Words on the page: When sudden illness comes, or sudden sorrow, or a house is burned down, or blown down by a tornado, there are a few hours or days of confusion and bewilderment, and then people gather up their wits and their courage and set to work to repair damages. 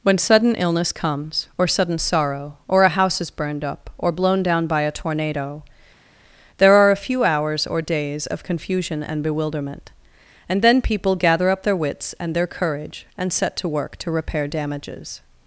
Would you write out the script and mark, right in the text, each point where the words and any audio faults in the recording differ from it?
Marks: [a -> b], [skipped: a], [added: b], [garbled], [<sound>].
When sudden illness comes, or sudden sorrow, or a house is burned [down, -> up] or blown down by a tornado, there are a few hours or days of confusion and bewilderment, and then people gather up their wits and their courage and set to work to repair damages.